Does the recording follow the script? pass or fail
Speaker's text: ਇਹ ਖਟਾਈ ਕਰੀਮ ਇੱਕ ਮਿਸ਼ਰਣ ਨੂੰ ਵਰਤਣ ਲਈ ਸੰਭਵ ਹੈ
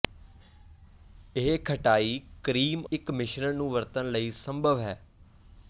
pass